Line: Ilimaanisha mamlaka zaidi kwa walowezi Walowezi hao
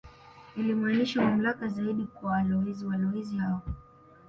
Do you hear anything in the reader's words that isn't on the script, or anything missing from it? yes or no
no